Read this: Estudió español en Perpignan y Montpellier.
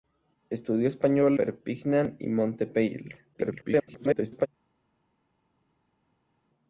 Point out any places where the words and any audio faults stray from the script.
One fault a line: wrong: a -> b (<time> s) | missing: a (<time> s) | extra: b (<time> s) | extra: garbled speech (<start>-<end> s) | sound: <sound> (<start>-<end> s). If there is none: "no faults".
missing: en (1.4 s)
extra: garbled speech (3.3-4.5 s)